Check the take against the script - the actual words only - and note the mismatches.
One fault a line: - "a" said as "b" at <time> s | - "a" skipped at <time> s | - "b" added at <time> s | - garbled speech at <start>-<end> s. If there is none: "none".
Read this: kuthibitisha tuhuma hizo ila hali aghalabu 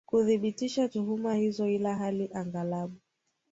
none